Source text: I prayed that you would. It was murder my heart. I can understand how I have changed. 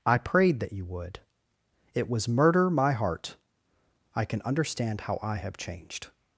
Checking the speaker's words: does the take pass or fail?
pass